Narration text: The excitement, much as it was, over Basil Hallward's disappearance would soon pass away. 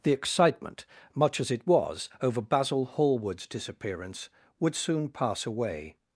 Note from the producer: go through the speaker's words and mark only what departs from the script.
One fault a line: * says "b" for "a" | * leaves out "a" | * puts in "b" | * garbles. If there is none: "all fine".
all fine